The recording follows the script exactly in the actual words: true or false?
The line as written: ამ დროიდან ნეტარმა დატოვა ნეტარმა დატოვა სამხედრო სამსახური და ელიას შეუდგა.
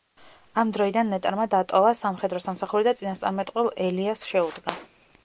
false